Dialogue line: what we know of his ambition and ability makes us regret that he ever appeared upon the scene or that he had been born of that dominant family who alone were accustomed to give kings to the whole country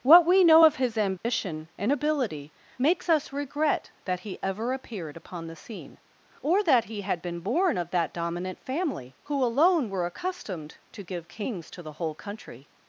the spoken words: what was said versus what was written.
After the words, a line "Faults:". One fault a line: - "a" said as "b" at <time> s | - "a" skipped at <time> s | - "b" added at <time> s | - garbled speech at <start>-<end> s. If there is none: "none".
what we know of his ambition and ability makes us regret that he ever appeared upon the scene or that he had been born of that dominant family who alone were accustomed to give kings to the whole country
Faults:
none